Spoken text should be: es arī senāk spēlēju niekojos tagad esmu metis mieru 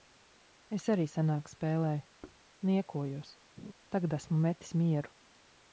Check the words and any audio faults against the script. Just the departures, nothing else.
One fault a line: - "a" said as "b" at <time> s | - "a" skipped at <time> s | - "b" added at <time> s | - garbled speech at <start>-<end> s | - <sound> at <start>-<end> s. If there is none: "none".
- thud at 2.2-2.4 s
- laugh at 3.6-3.7 s